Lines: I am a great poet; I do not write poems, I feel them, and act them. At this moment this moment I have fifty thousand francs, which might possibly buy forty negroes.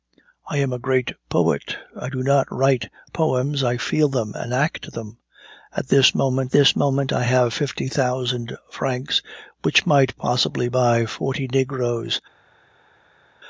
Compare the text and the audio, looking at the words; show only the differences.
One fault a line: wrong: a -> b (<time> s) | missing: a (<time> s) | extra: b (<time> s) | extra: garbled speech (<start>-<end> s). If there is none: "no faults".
no faults